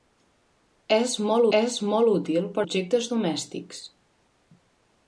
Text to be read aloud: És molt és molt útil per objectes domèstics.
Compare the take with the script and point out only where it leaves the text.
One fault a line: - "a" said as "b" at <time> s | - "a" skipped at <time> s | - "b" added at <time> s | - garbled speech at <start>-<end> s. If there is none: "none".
none